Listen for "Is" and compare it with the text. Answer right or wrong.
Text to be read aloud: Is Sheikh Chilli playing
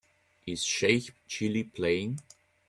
right